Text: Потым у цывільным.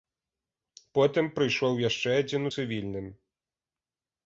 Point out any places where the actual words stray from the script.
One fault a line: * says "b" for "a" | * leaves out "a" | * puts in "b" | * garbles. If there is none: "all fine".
* puts in "прыйшоў яшчэ адзін"